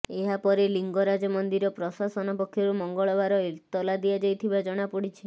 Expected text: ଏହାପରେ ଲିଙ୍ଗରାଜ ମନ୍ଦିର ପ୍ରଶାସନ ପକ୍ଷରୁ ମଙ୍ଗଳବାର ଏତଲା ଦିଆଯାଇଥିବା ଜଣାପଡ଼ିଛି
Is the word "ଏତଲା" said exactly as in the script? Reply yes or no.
yes